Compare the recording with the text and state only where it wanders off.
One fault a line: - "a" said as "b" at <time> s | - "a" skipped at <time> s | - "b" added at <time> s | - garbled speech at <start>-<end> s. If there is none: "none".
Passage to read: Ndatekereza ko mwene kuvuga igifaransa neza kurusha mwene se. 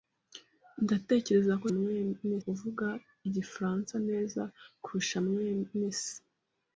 none